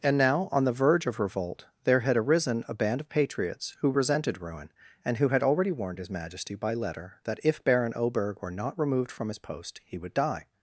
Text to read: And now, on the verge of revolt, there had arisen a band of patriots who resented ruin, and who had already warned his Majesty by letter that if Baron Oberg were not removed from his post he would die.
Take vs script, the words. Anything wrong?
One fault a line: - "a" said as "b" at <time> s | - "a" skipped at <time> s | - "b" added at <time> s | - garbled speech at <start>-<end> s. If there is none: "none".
none